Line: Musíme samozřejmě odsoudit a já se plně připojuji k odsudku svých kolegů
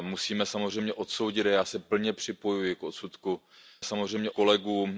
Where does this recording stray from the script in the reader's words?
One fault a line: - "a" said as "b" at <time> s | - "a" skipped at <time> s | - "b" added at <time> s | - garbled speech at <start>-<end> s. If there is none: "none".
- "svých" said as "samozřejmě" at 3.8 s